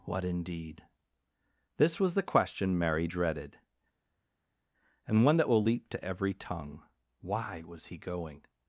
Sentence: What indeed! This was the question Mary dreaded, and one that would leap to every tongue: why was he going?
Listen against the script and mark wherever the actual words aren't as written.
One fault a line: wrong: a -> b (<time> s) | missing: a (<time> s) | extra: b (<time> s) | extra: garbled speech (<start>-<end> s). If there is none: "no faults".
wrong: would -> will (5.5 s)